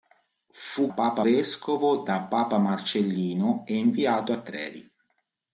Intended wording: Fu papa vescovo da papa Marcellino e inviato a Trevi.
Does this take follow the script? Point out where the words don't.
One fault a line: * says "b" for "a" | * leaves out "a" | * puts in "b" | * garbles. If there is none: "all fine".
all fine